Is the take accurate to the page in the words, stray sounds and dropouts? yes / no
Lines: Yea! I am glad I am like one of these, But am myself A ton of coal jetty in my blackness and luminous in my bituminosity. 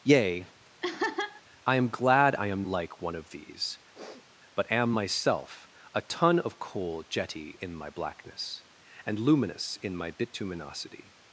no